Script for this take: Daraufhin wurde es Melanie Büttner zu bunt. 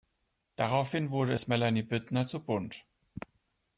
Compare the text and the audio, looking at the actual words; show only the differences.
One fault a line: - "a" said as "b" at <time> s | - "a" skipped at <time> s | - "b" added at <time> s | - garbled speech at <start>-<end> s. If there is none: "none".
none